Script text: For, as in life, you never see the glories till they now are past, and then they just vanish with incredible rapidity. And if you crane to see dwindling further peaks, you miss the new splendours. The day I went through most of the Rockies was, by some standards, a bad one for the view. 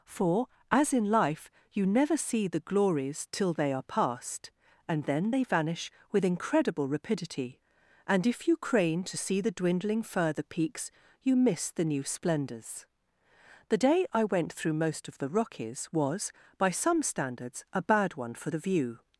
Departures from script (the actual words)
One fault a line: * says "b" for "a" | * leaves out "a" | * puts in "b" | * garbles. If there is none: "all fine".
* leaves out "now"
* leaves out "just"
* puts in "the"